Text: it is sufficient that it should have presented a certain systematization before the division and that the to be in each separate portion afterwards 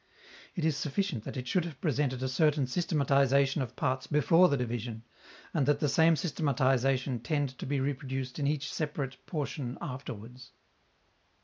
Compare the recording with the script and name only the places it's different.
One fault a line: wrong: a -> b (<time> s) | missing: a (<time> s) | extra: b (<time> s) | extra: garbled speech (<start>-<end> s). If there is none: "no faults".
extra: of parts (3.6 s)
extra: same systematization tend (5.9 s)
extra: reproduced (7.8 s)